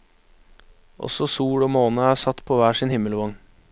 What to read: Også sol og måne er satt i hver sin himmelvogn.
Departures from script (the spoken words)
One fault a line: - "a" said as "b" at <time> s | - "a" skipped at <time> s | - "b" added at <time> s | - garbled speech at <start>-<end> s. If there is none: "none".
- "i" said as "på" at 2.5 s